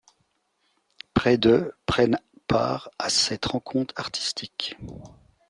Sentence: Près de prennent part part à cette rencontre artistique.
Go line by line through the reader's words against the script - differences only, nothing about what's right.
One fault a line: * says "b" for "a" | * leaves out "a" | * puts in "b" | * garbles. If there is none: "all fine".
* leaves out "part"